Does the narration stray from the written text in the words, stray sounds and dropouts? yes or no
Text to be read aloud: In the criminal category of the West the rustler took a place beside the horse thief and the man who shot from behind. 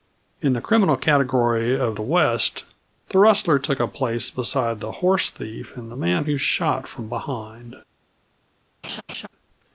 yes